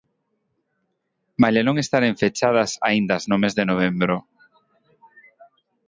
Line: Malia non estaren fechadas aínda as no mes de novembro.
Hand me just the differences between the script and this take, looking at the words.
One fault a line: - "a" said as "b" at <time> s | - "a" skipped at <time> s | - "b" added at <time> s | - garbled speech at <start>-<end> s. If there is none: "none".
none